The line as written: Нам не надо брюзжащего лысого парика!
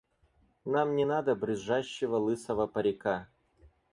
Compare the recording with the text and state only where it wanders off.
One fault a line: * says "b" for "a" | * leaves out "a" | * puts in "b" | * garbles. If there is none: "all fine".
all fine